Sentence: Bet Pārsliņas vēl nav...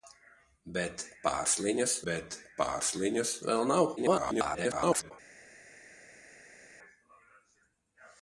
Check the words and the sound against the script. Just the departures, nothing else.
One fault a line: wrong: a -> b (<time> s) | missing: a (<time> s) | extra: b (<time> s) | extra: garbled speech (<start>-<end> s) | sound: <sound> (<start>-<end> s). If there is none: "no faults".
extra: bet Pārsliņas (2.1 s)
extra: garbled speech (4.0-5.1 s)